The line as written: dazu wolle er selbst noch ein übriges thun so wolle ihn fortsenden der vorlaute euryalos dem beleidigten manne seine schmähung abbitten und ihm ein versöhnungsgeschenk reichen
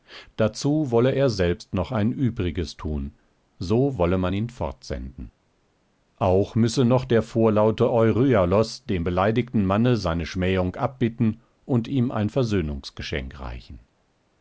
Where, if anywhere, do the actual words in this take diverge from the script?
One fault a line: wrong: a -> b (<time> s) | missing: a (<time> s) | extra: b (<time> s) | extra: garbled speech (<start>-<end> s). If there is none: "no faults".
extra: man (4.2 s)
extra: auch müsse noch (6.2 s)